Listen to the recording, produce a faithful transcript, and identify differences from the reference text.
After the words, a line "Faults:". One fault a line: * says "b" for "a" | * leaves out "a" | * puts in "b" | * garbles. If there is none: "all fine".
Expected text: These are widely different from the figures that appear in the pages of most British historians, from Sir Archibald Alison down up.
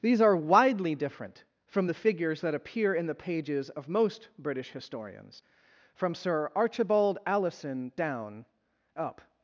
These are widely different from the figures that appear in the pages of most British historians, from Sir Archibald Alison down up.
Faults:
all fine